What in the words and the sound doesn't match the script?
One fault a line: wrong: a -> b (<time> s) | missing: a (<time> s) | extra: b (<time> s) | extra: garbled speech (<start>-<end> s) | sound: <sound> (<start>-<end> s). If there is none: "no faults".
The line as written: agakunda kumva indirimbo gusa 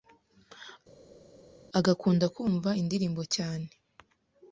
wrong: gusa -> cyane (3.3 s)